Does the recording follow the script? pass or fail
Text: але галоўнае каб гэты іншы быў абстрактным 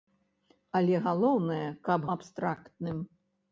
fail